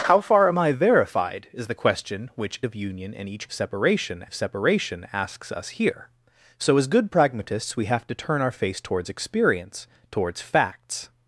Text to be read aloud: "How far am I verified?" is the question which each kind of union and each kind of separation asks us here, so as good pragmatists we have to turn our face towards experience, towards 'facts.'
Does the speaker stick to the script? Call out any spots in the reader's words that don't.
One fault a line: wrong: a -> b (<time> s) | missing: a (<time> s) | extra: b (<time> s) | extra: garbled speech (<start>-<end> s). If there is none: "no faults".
missing: each kind (2.6 s)
wrong: kind -> separation (3.5 s)